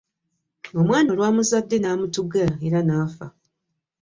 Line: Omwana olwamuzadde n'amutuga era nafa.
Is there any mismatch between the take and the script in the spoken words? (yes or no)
no